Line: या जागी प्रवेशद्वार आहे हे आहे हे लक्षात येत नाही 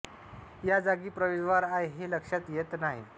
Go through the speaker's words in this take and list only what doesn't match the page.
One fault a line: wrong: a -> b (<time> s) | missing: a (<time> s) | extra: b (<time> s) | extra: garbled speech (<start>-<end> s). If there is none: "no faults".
missing: आहे हे (2.1 s)